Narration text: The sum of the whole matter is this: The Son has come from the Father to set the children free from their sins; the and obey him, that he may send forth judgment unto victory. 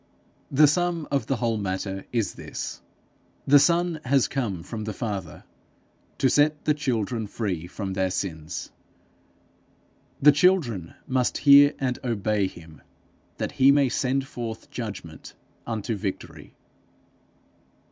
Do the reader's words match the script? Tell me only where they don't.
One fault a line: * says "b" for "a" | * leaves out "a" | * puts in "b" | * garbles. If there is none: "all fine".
* puts in "children must hear"